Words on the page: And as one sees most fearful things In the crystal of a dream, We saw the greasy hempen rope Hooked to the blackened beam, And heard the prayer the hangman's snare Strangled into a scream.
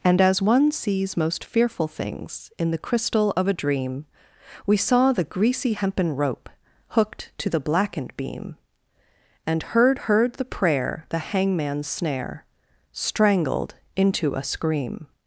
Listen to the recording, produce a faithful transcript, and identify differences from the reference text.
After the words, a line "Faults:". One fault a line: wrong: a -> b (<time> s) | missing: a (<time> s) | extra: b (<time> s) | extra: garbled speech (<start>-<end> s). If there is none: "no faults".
And as one sees most fearful things In the crystal of a dream, We saw the greasy hempen rope Hooked to the blackened beam, And heard heard the prayer the hangman's snare Strangled into a scream.
Faults:
extra: heard (10.0 s)